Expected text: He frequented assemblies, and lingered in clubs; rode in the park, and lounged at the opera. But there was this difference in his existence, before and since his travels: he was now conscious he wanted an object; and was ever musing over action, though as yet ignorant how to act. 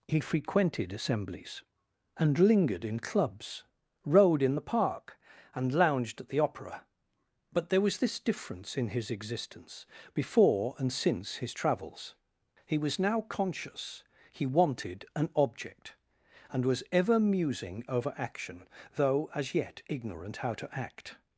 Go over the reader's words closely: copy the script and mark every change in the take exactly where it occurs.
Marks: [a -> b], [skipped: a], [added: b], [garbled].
He frequented assemblies, and lingered in clubs; rode in the park, and lounged at the opera. But there was this difference in his existence, before and since his travels: he was now conscious he wanted an object; and was ever musing over action, though as yet ignorant how to act.